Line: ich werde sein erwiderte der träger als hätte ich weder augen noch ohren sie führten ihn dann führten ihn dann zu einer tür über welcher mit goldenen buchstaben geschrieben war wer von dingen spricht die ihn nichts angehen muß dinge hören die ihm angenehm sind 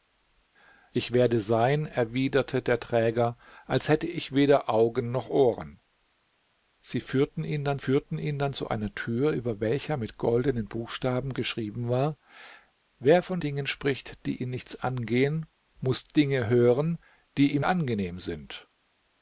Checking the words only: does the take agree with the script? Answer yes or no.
yes